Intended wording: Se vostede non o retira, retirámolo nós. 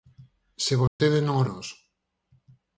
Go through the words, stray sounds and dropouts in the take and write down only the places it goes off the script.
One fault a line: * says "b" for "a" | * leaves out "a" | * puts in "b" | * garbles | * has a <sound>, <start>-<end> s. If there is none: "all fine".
* has a dropout, 0.9-1.0 s
* leaves out "retira retirámolo"